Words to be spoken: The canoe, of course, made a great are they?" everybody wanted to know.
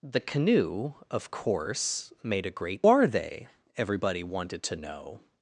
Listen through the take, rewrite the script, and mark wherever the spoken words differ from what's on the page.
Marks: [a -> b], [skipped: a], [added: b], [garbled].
The canoe, of course, made a great are they?" everybody wanted to know.